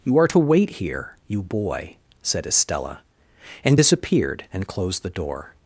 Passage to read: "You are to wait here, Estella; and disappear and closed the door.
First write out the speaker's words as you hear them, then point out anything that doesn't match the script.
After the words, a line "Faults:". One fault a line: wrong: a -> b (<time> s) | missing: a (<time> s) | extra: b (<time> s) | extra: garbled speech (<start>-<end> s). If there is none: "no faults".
"You are to wait here, you boy," said Estella; and disappeared and closed the door.
Faults:
extra: you boy said (1.3 s)
wrong: disappear -> disappeared (3.7 s)